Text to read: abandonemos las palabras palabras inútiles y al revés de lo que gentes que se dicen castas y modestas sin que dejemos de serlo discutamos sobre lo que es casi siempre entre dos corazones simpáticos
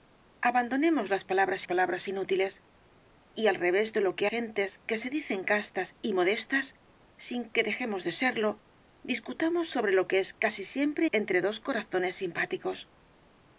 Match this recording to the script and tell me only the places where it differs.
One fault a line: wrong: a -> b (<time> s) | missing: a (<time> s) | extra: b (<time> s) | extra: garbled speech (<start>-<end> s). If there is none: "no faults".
no faults